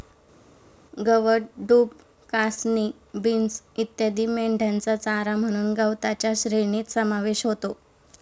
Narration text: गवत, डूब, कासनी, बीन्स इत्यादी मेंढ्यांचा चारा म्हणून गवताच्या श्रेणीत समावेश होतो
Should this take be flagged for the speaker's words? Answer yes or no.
no